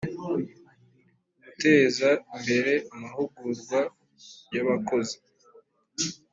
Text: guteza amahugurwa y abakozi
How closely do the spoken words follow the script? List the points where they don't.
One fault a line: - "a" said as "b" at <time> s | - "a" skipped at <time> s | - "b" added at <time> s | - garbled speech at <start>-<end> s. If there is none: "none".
- "imbere" added at 2.4 s